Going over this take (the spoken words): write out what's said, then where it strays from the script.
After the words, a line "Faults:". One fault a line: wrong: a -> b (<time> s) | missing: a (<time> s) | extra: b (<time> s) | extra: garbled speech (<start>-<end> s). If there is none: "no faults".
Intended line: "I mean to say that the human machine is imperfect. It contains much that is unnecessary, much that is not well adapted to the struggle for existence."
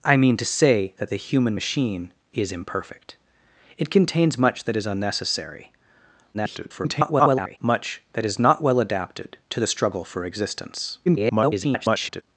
"I mean to say that the human machine is imperfect. It contains much that is unnecessary, [garbled] much that is not well adapted to the struggle for existence." [garbled]
Faults:
extra: garbled speech (6.3-7.6 s)
extra: garbled speech (11.1-12.2 s)